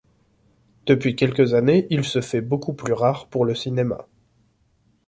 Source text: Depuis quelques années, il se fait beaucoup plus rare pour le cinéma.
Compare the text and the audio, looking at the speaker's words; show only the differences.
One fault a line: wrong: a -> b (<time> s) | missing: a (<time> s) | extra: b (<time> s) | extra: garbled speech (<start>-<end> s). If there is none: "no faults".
no faults